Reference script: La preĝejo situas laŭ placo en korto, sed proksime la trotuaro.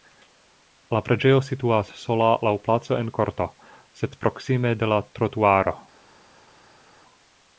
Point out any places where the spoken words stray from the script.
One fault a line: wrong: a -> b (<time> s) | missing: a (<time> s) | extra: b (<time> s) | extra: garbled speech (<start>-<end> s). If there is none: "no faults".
extra: sola (2.0 s)
extra: de (4.8 s)